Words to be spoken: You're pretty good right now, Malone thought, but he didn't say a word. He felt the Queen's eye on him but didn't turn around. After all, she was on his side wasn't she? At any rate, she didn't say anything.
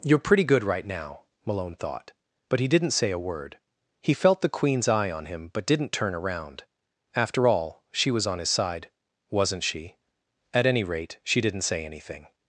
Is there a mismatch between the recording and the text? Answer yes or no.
no